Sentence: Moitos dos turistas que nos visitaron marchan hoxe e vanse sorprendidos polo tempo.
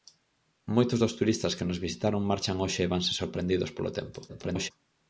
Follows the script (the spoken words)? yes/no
no